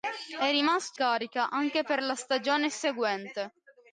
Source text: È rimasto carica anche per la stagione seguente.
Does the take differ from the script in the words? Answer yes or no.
no